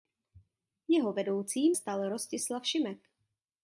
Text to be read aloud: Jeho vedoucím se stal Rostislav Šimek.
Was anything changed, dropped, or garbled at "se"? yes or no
yes